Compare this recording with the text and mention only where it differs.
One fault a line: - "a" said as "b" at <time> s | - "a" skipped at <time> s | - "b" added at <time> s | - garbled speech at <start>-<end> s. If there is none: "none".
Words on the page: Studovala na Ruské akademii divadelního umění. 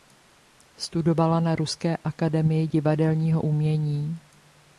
none